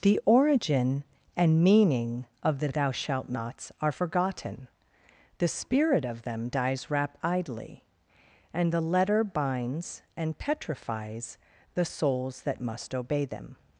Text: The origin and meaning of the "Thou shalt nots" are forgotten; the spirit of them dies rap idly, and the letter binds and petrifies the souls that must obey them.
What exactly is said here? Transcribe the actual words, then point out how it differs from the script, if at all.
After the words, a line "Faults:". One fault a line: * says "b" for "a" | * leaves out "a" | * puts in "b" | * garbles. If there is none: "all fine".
The origin and meaning of the "Thou shalt nots" are forgotten; the spirit of them dies rap idly, and the letter binds and petrifies the souls that must obey them.
Faults:
all fine